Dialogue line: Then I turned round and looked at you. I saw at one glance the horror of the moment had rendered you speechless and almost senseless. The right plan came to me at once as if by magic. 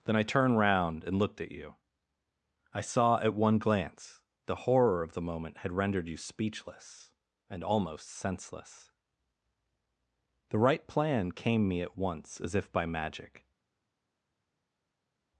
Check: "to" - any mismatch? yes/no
yes